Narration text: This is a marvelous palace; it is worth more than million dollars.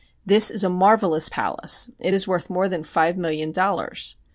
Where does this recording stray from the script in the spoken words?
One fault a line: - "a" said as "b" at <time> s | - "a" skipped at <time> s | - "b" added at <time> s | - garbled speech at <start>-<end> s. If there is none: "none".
- "five" added at 2.8 s